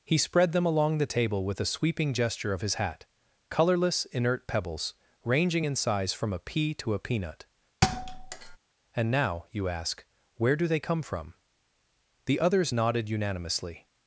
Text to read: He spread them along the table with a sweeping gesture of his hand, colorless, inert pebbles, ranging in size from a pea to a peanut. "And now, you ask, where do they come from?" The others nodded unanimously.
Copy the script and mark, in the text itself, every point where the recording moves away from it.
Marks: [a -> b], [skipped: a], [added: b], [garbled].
He spread them along the table with a sweeping gesture of his [hand, -> hat] colorless, inert pebbles, ranging in size from a pea to a peanut. "And now, you ask, where do they come from?" The others nodded unanimously.